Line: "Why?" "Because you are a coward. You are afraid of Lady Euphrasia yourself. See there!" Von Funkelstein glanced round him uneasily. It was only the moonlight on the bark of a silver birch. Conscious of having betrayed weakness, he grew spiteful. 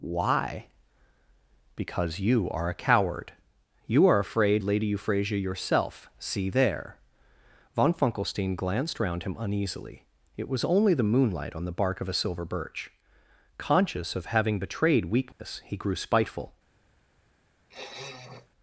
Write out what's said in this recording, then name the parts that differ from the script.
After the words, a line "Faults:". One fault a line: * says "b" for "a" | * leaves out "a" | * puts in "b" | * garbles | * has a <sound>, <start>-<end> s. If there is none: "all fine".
"Why?" "Because you are a coward. You are afraid Lady Euphrasia yourself. See there!" Von Funkelstein glanced round him uneasily. It was only the moonlight on the bark of a silver birch. Conscious of having betrayed weakness, he grew spiteful.
Faults:
* leaves out "of"
* has a dropout, 15.3-15.4 s
* has a sniff, 17.7-18.5 s